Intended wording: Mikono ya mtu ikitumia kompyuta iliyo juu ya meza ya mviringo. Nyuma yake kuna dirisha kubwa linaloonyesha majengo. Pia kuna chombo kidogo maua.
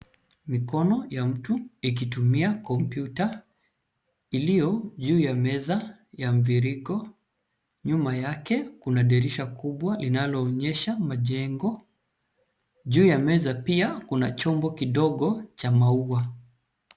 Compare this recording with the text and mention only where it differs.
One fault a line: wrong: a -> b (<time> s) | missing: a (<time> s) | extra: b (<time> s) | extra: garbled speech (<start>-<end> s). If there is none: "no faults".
extra: Juu ya meza (12.8 s)
extra: cha (15.6 s)